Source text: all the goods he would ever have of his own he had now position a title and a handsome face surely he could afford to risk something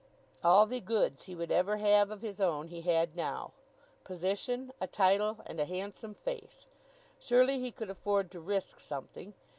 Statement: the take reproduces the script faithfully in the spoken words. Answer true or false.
true